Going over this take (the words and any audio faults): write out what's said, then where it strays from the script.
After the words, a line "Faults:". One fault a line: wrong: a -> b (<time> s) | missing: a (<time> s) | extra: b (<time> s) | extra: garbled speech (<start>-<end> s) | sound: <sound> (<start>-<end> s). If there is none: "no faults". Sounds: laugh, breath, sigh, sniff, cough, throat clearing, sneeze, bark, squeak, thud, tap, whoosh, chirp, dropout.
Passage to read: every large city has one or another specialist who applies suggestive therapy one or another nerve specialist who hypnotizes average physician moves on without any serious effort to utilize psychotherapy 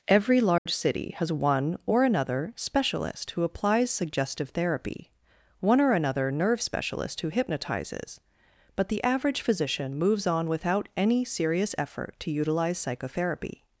every large city has one or another specialist who applies suggestive therapy one or another nerve specialist who hypnotizes but the average physician moves on without any serious effort to utilize psychotherapy
Faults:
sound: dropout (0.6-0.7 s)
extra: but the (8.8 s)